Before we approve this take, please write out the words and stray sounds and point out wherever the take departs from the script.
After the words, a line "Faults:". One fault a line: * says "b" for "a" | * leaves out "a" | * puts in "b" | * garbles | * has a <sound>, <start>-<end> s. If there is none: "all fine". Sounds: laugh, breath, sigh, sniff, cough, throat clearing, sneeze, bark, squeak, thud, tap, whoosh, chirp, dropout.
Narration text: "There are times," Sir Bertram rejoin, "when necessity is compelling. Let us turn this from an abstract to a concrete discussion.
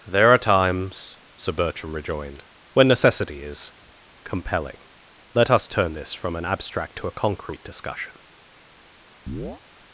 "There are times," Sir Bertram rejoined, "when necessity is compelling. Let us turn this from an abstract to a concrete discussion.
Faults:
* says "rejoined" for "rejoin"
* has a chirp, 9.3-9.6 s